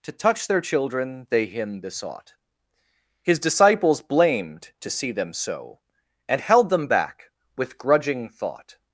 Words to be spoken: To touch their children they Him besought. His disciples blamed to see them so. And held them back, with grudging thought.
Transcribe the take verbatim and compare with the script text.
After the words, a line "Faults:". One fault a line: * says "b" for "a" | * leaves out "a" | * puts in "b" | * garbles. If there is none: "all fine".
To touch their children they Him besought. His disciples blamed to see them so. And held them back, with grudging thought.
Faults:
all fine